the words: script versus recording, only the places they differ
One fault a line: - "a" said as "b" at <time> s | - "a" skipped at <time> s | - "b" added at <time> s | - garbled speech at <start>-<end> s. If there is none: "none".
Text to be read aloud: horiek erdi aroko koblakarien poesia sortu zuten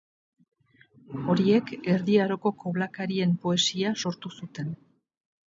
none